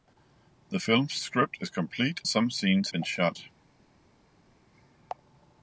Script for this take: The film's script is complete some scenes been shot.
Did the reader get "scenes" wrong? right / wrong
right